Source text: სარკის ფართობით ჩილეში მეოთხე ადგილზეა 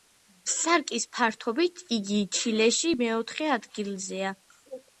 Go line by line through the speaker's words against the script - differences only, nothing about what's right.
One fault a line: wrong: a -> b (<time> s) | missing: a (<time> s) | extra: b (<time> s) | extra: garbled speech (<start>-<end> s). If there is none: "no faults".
extra: იგი (2.0 s)